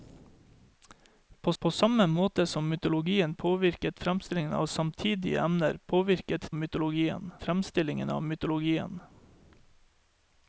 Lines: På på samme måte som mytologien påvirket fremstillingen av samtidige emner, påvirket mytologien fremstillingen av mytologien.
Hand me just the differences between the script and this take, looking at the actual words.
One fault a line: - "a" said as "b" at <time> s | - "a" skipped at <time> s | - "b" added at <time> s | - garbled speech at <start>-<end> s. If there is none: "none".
none